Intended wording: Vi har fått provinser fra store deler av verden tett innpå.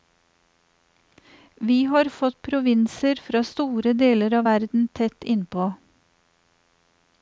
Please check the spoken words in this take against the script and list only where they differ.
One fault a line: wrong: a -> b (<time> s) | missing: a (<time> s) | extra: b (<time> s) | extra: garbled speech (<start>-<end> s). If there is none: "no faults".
no faults